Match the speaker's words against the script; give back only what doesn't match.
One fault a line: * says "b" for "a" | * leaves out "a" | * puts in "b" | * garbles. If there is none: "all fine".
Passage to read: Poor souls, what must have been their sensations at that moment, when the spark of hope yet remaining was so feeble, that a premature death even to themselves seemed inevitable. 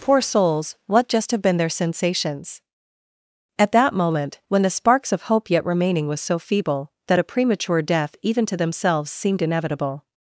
* says "just" for "must"
* says "sparks" for "spark"